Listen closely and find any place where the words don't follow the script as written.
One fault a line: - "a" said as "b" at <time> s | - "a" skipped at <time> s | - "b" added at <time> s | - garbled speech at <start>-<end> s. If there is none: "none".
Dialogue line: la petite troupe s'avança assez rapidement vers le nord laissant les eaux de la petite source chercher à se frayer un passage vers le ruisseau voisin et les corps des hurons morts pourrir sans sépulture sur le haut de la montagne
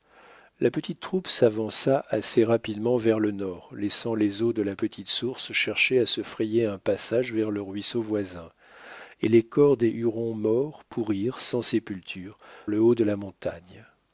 - "sur" skipped at 12.4 s